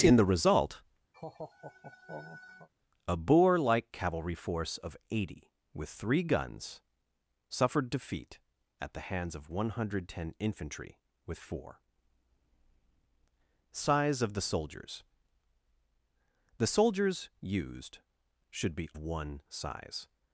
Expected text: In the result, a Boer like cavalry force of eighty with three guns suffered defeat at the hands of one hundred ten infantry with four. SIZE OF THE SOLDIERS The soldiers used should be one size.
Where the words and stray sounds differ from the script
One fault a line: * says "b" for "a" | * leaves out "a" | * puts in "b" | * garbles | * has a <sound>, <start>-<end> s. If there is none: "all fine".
* has a laugh, 1.1-2.7 s